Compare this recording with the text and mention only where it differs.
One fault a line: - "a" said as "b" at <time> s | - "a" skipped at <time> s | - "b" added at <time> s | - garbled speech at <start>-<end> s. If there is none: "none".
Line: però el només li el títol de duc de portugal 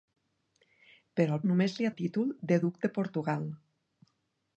none